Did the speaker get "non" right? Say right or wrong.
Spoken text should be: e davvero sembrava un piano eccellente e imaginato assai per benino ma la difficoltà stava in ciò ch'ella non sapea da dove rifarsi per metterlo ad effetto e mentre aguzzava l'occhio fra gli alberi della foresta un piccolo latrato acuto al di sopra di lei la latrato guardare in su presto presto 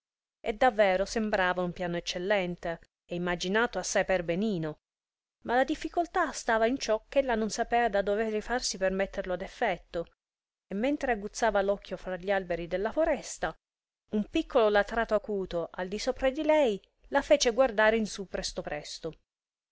right